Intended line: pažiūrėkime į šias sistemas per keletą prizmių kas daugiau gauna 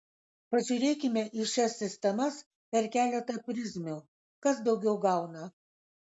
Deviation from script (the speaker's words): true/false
false